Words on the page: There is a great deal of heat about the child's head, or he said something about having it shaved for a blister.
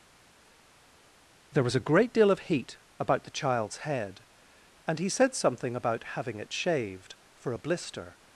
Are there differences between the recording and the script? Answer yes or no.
yes